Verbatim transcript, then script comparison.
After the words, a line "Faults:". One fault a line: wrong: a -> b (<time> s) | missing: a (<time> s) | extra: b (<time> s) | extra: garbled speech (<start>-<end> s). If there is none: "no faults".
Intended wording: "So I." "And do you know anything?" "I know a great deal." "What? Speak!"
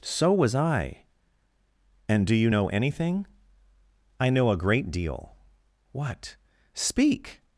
"So was I." "And do you know anything?" "I know a great deal." "What? Speak!"
Faults:
extra: was (0.3 s)